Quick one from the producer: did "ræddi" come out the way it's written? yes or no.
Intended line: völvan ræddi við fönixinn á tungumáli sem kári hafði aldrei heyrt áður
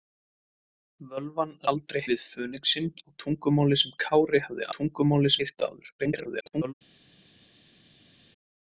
no